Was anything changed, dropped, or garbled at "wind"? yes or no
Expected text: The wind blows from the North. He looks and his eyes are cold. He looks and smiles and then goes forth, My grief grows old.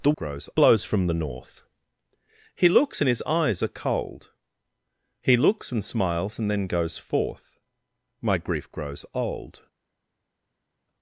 yes